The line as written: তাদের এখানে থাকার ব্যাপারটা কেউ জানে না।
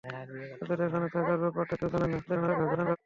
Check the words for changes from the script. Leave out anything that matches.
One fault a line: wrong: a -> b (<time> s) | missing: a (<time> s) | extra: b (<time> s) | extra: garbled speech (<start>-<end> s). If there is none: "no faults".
extra: garbled speech (2.3-3.0 s)